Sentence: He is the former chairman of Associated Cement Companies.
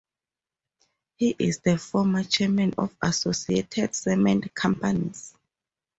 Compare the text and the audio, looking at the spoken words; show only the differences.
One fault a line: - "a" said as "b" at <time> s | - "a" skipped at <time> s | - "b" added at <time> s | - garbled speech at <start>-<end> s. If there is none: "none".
none